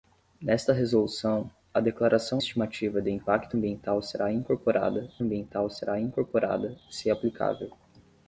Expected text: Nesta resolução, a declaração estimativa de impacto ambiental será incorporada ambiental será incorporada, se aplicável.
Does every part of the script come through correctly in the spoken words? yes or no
yes